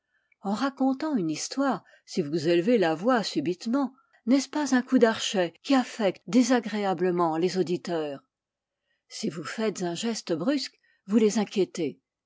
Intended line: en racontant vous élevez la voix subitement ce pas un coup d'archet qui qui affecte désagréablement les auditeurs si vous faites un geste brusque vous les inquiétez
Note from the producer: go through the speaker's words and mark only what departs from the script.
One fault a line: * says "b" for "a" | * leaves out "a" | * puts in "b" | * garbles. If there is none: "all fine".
* puts in "une histoire si"
* puts in "n'est"
* leaves out "qui"